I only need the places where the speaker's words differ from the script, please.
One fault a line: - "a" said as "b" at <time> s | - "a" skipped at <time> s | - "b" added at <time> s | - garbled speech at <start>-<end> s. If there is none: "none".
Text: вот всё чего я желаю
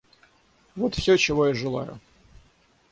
none